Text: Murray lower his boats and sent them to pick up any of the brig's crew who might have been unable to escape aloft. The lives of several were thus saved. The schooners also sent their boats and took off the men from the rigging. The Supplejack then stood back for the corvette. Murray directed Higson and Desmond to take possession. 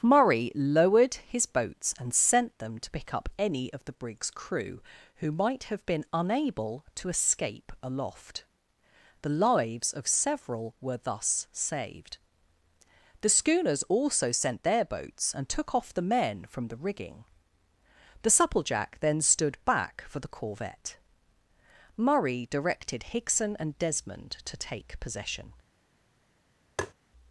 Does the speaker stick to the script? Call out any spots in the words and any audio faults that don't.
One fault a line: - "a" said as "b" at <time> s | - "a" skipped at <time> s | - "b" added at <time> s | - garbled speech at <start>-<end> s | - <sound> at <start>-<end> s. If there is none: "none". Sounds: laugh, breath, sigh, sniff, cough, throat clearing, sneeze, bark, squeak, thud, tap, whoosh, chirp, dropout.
- "lower" said as "lowered" at 0.6 s
- tap at 26.8-26.9 s